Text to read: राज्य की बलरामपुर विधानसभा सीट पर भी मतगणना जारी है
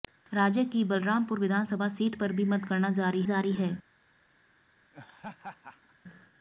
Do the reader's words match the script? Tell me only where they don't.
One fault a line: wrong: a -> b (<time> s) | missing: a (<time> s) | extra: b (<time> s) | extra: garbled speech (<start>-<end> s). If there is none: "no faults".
extra: जारी (3.2 s)